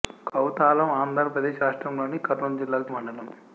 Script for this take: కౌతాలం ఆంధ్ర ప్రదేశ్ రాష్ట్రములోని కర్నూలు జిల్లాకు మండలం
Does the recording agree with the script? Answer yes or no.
yes